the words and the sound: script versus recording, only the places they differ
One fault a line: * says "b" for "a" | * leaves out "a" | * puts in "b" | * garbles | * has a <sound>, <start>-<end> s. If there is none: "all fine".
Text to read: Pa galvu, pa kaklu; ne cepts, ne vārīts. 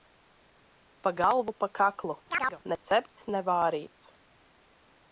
* has a chirp, 2.3-2.6 s